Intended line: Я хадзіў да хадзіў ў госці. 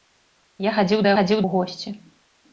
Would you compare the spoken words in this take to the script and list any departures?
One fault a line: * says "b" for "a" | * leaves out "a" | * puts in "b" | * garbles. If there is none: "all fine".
all fine